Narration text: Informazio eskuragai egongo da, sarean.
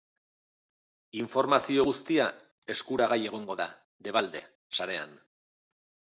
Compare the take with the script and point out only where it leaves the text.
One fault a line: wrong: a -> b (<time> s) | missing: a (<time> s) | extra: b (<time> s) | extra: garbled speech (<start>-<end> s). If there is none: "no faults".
extra: guztia (1.9 s)
extra: debalde (4.1 s)